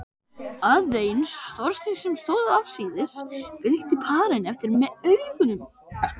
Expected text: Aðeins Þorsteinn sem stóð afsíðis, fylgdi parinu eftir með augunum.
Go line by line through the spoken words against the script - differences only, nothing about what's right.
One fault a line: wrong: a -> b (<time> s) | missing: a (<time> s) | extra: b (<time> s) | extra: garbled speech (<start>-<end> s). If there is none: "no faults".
no faults